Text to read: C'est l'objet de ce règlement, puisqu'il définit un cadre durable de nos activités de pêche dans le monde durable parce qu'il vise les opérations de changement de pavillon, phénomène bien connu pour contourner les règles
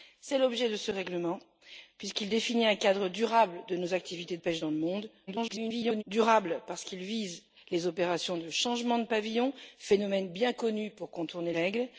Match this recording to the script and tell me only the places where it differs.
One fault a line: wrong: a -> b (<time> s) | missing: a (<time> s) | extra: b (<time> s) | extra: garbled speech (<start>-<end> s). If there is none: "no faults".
missing: de (4.4 s)
extra: garbled speech (5.3-6.0 s)
missing: les (11.5 s)